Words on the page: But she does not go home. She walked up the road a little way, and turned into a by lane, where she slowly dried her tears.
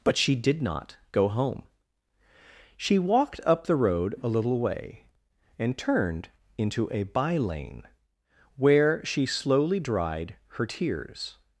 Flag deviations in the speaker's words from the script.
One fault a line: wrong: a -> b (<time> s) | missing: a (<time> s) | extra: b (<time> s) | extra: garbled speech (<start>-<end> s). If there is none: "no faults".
wrong: does -> did (0.3 s)